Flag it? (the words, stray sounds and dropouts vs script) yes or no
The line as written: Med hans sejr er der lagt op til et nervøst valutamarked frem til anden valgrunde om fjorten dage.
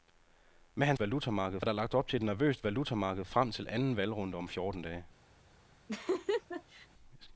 yes